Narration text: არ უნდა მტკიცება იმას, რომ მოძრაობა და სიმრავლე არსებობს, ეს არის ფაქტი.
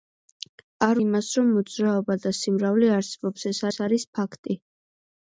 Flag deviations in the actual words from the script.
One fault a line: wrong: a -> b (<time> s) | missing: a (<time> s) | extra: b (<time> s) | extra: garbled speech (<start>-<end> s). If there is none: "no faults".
missing: უნდა მტკიცება (1.0 s)
extra: ეს (3.7 s)